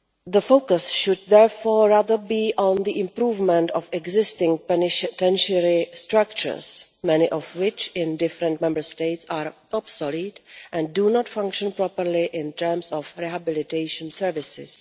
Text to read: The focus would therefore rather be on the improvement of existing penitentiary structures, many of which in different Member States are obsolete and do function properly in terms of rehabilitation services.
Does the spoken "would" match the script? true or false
false